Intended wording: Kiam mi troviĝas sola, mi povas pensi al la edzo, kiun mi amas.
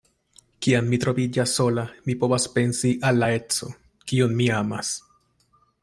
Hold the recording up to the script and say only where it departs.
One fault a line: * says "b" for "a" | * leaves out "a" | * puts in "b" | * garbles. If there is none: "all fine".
all fine